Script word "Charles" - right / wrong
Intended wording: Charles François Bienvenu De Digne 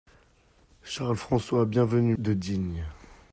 right